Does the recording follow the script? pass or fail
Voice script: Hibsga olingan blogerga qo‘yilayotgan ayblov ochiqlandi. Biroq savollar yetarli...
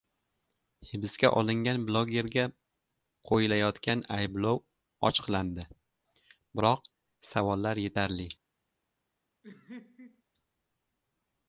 pass